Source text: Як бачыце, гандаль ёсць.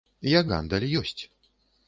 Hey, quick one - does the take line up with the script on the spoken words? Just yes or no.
no